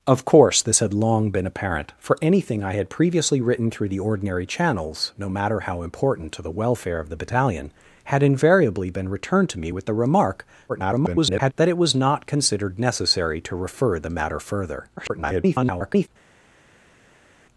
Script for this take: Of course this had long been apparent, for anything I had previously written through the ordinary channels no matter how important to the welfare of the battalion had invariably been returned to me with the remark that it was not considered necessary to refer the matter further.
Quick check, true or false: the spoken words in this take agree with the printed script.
false